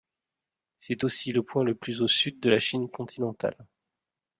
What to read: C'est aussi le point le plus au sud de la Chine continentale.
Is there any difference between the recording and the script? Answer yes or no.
no